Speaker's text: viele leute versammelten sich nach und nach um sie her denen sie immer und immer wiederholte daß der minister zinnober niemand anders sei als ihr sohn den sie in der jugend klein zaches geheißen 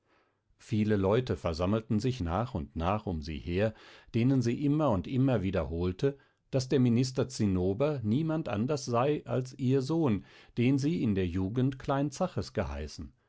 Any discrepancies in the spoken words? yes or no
no